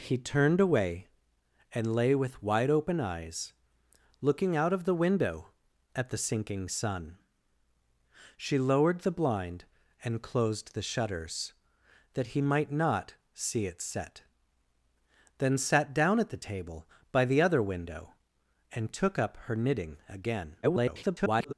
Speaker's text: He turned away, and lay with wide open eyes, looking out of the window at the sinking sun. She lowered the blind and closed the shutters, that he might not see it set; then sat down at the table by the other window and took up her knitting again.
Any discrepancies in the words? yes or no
yes